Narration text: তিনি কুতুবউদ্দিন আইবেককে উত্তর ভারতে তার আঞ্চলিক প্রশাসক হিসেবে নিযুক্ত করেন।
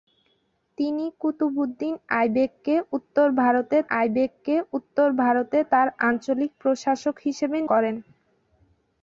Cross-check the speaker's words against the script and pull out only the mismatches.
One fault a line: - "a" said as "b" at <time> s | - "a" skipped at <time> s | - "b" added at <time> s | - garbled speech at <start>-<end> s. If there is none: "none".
- "আইবেককে উত্তর ভারতে" added at 3.9 s
- "নিযুক্ত" skipped at 7.6 s